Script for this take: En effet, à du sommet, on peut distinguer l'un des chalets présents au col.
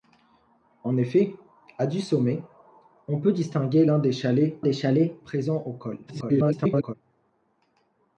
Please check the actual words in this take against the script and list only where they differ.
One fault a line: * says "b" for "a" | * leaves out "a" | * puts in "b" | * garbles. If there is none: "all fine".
* puts in "des chalets"
* garbles